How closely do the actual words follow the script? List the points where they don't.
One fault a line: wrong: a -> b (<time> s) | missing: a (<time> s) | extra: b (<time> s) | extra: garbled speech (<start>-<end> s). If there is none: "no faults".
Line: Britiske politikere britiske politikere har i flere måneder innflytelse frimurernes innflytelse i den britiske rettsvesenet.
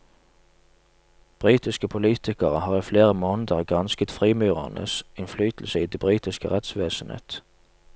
missing: britiske politikere (2.6 s)
wrong: innflytelse -> gransket (3.6 s)
wrong: den -> det (5.9 s)